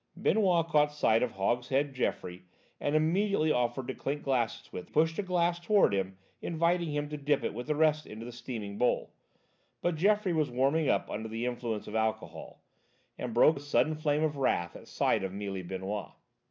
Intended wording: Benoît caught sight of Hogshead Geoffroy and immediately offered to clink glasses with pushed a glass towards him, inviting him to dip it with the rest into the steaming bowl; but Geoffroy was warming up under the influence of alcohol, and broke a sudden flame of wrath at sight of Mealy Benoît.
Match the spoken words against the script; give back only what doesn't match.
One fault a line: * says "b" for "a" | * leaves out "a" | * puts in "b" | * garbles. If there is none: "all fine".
all fine